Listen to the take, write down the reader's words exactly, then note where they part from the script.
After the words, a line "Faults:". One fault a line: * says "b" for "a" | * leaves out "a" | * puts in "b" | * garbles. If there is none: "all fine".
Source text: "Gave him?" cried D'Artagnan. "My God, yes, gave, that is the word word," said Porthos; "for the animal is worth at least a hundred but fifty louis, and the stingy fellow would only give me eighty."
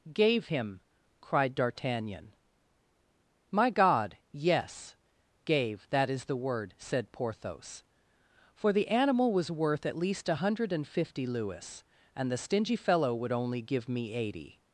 "Gave him?" cried D'Artagnan. "My God, yes, gave, that is the word," said Porthos; "for the animal was worth at least a hundred and fifty louis, and the stingy fellow would only give me eighty."
Faults:
* leaves out "word"
* says "was" for "is"
* says "and" for "but"